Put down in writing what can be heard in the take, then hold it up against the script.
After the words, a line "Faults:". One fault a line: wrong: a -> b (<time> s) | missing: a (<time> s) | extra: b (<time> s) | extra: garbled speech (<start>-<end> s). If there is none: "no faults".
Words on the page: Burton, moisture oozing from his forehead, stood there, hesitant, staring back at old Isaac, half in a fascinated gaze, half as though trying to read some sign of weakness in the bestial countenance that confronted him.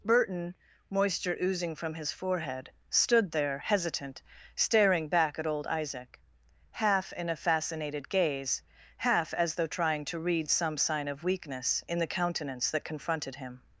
Burton, moisture oozing from his forehead, stood there, hesitant, staring back at old Isaac, half in a fascinated gaze, half as though trying to read some sign of weakness in the countenance that confronted him.
Faults:
missing: bestial (12.1 s)